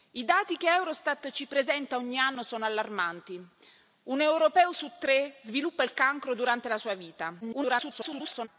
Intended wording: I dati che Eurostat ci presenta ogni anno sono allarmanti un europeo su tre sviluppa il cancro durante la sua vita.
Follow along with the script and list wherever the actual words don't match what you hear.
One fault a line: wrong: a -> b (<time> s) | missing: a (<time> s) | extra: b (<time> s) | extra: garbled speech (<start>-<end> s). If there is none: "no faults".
extra: garbled speech (7.4-8.5 s)